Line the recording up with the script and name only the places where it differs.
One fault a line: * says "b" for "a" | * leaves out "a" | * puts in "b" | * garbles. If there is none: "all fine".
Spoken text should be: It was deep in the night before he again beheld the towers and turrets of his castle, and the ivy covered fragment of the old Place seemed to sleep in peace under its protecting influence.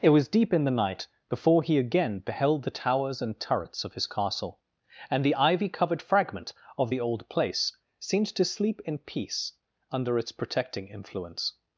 all fine